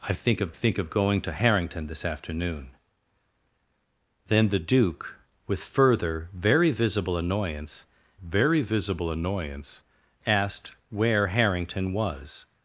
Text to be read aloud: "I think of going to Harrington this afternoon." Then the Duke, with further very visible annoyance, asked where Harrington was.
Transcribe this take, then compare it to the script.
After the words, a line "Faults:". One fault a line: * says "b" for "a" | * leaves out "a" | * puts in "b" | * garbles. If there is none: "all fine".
"I think of think of going to Harrington this afternoon." Then the Duke, with further very visible annoyance very visible annoyance, asked where Harrington was.
Faults:
* puts in "think of"
* puts in "very visible annoyance"